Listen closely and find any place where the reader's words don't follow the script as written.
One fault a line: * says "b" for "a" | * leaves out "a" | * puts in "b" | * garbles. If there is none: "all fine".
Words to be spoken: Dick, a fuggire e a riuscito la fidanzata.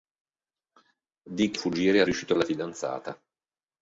all fine